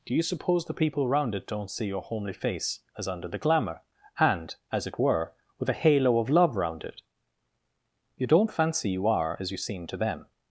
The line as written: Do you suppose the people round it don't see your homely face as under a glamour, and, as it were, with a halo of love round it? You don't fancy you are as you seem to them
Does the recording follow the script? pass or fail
fail